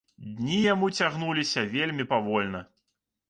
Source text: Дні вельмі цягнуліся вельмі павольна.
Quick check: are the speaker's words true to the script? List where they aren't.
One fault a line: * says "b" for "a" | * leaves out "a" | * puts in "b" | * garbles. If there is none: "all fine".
* says "яму" for "вельмі"